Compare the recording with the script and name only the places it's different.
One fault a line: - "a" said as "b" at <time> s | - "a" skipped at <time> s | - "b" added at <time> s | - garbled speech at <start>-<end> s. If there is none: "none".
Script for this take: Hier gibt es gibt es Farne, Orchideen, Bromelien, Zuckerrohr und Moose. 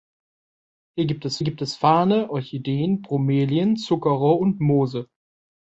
none